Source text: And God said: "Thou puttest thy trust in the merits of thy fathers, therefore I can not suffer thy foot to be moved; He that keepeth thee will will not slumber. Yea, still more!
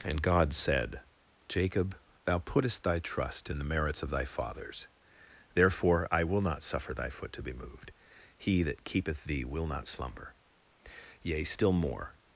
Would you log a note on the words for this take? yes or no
yes